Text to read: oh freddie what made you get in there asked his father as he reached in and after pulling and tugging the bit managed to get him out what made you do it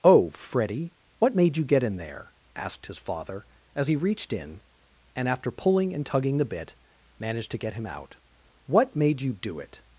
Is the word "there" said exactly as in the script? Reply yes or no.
yes